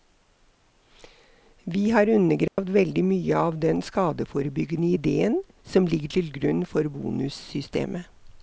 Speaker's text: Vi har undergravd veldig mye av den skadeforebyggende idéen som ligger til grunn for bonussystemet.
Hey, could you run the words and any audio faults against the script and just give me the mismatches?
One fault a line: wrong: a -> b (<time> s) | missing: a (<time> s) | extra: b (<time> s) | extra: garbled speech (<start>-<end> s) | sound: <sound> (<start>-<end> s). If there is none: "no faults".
sound: dropout (2.5-2.6 s)